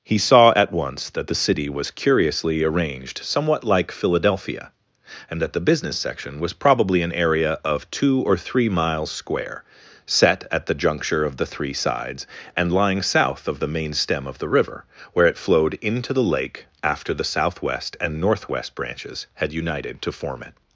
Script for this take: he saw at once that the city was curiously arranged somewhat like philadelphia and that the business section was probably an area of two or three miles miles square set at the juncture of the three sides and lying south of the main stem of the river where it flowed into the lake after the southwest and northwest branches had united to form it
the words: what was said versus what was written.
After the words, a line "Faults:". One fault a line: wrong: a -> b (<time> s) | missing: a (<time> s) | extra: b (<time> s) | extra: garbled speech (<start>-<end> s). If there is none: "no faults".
he saw at once that the city was curiously arranged somewhat like philadelphia and that the business section was probably an area of two or three miles square set at the juncture of the three sides and lying south of the main stem of the river where it flowed into the lake after the southwest and northwest branches had united to form it
Faults:
missing: miles (9.1 s)